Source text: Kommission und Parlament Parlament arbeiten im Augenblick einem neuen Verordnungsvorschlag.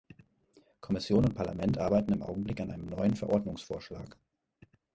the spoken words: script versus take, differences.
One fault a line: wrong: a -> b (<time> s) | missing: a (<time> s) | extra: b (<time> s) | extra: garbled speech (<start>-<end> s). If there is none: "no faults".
missing: Parlament (1.8 s)
extra: an (2.6 s)